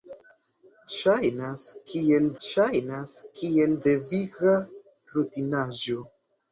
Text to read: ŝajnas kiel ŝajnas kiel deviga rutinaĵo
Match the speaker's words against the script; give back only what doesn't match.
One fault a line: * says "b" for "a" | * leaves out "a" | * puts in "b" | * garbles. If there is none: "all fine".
all fine